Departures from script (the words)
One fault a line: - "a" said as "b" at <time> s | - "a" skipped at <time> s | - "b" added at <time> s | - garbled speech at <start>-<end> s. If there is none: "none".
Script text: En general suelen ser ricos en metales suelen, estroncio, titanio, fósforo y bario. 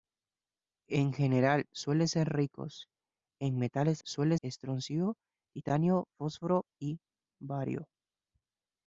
none